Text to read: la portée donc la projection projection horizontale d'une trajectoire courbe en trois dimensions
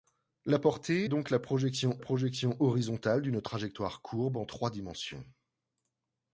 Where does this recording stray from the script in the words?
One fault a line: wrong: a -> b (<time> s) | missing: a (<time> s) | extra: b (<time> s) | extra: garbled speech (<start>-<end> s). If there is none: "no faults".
no faults